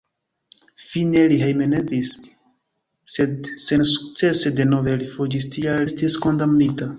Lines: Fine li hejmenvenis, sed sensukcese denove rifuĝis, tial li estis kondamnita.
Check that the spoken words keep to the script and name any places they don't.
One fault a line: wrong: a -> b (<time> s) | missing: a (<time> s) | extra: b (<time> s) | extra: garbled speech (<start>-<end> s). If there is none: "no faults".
missing: li (5.9 s)